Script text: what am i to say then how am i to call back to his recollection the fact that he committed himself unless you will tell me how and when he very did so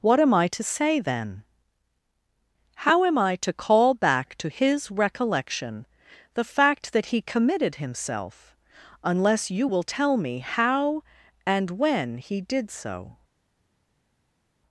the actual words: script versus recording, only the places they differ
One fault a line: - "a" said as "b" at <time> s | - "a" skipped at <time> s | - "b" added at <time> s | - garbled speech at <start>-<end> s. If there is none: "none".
- "very" skipped at 12.4 s